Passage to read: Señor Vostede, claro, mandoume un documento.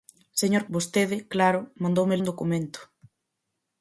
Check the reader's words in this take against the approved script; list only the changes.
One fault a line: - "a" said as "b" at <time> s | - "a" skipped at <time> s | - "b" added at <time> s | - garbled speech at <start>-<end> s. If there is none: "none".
none